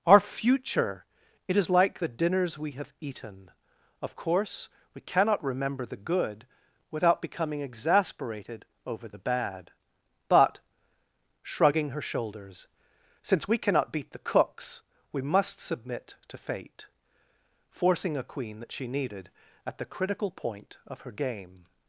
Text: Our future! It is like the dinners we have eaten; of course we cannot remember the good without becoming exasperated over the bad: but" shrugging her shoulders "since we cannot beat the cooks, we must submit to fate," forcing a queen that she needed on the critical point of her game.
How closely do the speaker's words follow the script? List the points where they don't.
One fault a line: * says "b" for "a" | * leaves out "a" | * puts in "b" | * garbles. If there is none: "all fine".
* says "at" for "on"